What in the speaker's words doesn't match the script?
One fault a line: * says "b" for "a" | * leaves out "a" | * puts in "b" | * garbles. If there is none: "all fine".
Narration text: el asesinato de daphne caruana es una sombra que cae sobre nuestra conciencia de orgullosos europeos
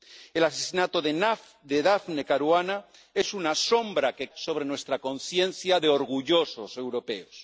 * leaves out "cae"